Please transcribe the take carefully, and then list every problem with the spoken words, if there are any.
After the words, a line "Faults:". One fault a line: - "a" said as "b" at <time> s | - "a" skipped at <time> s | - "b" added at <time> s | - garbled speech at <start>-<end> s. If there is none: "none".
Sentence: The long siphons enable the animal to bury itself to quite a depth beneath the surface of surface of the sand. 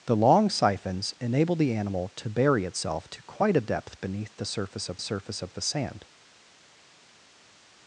The long siphons enable the animal to bury itself to quite a depth beneath the surface of surface of the sand.
Faults:
none